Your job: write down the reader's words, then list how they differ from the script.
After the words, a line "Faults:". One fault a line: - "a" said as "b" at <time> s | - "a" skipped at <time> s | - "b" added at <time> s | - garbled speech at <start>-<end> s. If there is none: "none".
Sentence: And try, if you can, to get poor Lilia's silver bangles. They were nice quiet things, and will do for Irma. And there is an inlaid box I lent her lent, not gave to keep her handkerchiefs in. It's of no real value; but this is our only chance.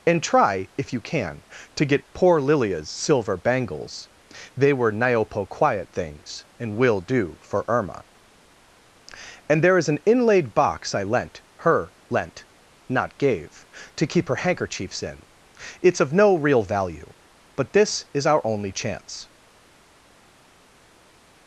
And try, if you can, to get poor Lilia's silver bangles. They were niopo quiet things, and will do for Irma. And there is an inlaid box I lent her lent, not gave to keep her handkerchiefs in. It's of no real value; but this is our only chance.
Faults:
- "nice" said as "niopo" at 4.9 s